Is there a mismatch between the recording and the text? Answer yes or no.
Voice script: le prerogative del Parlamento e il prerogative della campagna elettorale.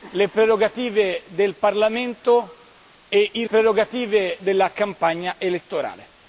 no